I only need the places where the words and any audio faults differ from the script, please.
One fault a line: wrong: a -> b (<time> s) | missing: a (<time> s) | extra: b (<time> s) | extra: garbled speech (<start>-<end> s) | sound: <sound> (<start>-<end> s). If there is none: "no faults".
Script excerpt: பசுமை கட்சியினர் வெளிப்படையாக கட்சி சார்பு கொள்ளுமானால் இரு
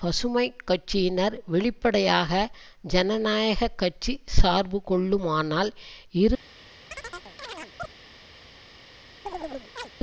extra: ஜனநாயக (2.9 s)
sound: chirp (6.9-7.9 s)
sound: chirp (9.3-9.9 s)